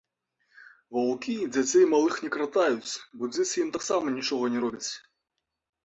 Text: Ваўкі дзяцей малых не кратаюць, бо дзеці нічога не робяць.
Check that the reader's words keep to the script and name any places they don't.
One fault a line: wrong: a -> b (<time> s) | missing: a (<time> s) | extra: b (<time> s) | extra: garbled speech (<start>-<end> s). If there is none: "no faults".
extra: ім таксама (3.6 s)